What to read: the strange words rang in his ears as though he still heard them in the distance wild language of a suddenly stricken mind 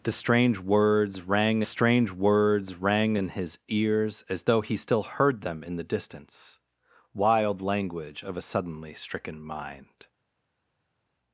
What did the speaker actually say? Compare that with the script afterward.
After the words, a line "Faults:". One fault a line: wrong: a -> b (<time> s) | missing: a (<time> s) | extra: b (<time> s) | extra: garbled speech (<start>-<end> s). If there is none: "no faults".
the strange words rang strange words rang in his ears as though he still heard them in the distance wild language of a suddenly stricken mind
Faults:
extra: strange words rang (1.6 s)